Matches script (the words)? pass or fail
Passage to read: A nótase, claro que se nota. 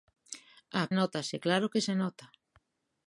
pass